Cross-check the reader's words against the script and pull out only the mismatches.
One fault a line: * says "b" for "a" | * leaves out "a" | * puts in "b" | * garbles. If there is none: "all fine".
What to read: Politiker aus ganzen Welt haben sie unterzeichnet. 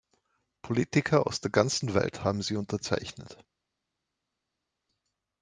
* puts in "der"